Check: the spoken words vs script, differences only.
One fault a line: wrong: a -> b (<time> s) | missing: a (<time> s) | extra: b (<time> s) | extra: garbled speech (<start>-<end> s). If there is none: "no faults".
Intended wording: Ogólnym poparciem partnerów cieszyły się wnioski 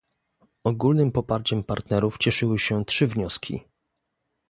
extra: trzy (2.9 s)